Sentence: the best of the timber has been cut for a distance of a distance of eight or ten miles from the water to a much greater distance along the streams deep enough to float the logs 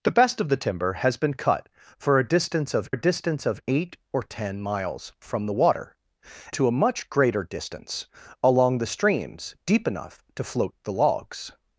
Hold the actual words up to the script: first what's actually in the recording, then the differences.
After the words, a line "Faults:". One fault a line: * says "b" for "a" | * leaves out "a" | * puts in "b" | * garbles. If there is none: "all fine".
the best of the timber has been cut for a distance of a distance of eight or ten miles from the water to a much greater distance along the streams deep enough to float the logs
Faults:
all fine